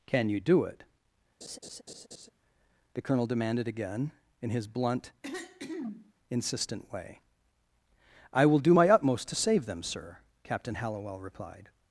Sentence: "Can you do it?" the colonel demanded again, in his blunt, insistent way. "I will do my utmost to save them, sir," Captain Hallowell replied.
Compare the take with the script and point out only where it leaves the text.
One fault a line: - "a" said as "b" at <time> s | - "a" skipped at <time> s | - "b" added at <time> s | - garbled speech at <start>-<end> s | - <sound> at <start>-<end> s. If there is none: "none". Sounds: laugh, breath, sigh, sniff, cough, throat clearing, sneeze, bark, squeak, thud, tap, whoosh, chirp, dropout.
- laugh at 1.4-2.3 s
- throat clearing at 5.2-6.1 s